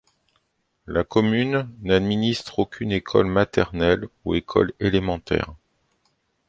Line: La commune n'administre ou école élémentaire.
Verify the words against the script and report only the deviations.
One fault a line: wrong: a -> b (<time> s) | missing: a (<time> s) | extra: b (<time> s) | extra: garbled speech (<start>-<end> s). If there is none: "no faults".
extra: aucune école maternelle (2.6 s)